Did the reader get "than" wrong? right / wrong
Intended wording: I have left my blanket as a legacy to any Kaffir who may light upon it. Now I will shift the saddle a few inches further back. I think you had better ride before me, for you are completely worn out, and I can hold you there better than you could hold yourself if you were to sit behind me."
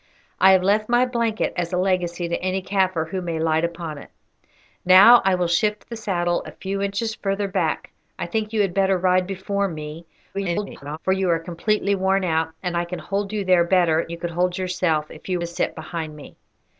wrong